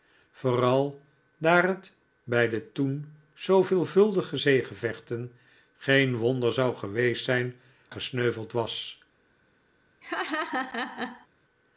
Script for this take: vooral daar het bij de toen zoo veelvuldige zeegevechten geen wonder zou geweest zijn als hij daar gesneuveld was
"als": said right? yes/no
no